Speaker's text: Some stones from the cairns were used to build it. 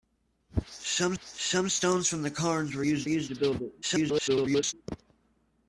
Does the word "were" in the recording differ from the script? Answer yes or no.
no